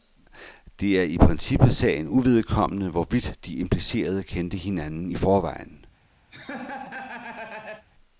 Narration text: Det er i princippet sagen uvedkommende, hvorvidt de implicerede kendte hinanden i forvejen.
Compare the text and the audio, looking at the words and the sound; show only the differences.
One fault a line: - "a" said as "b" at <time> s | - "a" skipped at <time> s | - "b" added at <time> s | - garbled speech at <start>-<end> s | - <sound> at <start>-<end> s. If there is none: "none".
- laugh at 6.3-7.9 s